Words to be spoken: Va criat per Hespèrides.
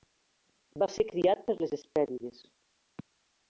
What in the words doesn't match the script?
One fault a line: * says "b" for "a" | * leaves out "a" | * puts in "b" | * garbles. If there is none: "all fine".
* puts in "ser"
* puts in "les"